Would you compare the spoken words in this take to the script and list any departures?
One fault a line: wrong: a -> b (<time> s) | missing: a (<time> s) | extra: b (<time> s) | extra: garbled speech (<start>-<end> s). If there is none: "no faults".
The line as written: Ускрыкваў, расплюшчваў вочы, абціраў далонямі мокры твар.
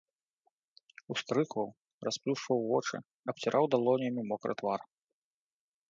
no faults